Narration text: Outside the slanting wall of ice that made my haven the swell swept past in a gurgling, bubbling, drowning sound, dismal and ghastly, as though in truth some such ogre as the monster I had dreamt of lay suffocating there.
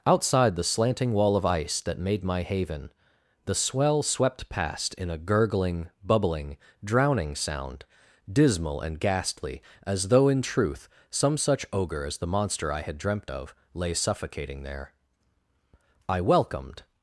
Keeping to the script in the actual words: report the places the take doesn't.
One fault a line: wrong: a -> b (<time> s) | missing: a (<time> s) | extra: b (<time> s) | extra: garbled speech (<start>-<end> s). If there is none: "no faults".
extra: I welcomed (16.1 s)